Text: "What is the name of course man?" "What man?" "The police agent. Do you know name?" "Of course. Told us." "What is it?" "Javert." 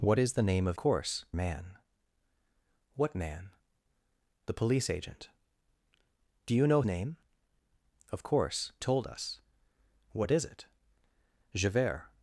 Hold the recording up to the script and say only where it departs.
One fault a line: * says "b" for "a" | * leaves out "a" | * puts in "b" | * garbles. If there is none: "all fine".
all fine